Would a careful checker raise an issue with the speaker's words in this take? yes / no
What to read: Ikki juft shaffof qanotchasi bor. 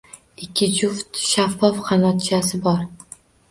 no